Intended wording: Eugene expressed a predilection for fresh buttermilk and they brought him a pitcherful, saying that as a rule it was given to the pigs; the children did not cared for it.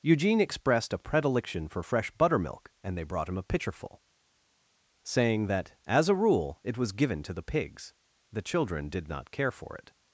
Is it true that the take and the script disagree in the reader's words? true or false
true